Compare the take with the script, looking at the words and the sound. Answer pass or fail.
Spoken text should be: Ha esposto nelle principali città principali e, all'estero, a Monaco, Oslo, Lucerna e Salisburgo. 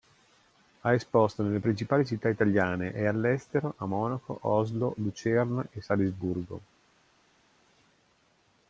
fail